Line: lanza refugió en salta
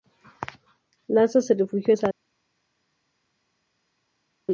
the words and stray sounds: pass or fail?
fail